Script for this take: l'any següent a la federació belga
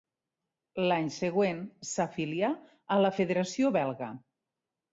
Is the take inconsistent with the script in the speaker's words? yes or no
yes